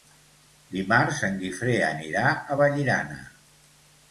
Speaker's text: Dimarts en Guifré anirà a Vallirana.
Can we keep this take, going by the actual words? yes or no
yes